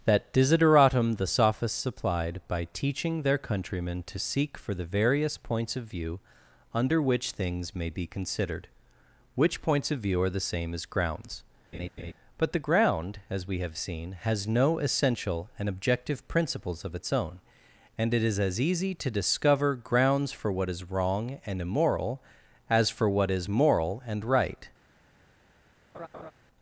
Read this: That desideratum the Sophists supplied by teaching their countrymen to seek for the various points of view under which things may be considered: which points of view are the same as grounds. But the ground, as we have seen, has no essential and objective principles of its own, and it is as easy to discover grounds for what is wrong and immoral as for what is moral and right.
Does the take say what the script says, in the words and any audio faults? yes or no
no